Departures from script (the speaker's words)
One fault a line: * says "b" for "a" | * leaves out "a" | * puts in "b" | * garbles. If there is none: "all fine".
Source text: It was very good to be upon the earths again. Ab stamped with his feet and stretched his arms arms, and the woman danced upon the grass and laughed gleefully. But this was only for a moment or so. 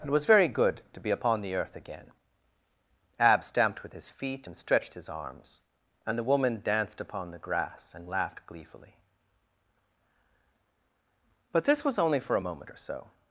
* says "earth" for "earths"
* leaves out "arms"